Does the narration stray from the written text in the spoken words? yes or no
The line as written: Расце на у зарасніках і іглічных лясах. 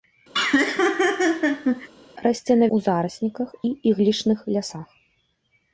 no